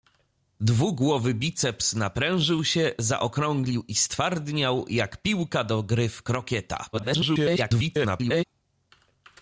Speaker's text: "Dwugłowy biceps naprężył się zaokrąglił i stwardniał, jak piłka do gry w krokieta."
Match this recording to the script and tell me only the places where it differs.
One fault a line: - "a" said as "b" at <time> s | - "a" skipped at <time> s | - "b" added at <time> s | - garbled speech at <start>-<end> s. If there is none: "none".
- garbled speech at 6.9-8.4 s